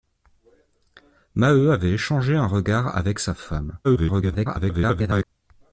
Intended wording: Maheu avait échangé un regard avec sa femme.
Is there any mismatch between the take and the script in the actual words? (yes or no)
yes